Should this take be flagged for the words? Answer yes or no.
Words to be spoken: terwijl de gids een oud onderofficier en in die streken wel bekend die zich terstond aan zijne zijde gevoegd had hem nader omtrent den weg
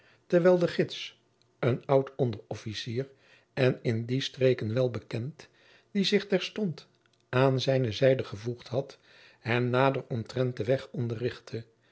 no